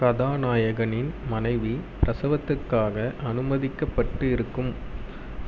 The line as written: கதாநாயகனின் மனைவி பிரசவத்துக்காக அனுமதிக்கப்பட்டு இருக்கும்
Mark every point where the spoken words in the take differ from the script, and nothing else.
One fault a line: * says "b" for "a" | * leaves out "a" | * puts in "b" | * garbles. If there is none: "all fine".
all fine